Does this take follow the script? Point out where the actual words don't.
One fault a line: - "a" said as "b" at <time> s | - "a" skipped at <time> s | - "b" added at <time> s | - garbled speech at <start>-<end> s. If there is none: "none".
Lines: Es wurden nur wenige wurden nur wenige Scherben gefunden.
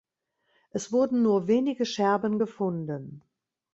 - "wurden nur wenige" skipped at 1.9 s